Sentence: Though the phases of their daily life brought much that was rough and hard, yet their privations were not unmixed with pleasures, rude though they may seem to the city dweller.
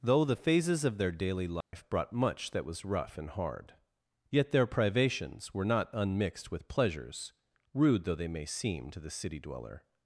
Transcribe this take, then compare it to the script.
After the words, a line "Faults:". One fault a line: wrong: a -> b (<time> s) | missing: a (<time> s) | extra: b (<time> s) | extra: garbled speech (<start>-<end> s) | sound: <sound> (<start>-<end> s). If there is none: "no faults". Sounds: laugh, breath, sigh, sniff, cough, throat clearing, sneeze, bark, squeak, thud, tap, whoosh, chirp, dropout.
Though the phases of their daily life brought much that was rough and hard, yet their privations were not unmixed with pleasures, rude though they may seem to the city dweller.
Faults:
sound: dropout (1.6-1.7 s)